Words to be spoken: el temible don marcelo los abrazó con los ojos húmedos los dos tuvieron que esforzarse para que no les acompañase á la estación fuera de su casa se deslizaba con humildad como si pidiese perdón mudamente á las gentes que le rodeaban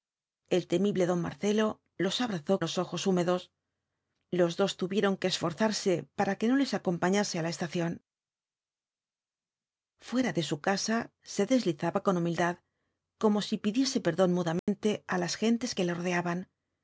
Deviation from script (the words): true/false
true